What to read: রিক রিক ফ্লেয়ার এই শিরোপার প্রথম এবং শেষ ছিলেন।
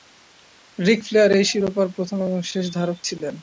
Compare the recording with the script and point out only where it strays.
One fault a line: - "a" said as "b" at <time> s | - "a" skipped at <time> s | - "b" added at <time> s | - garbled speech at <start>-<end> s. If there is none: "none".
- "রিক" skipped at 1.0 s
- "ধারক" added at 2.8 s